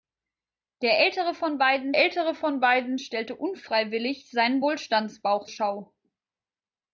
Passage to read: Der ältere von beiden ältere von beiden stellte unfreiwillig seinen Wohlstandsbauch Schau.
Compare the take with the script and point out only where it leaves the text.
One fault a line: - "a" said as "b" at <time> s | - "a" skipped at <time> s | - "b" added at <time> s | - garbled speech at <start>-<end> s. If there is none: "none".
none